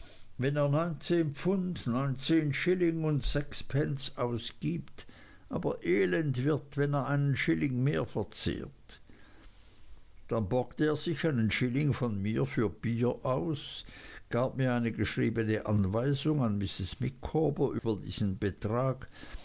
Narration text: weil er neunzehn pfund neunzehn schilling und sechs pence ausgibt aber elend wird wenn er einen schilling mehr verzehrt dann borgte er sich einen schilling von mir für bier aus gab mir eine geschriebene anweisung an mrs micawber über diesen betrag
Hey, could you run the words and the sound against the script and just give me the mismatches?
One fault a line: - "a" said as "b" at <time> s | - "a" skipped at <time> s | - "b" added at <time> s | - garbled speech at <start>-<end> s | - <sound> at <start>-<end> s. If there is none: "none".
- "weil" said as "wenn" at 0.4 s
- dropout at 17.8-17.8 s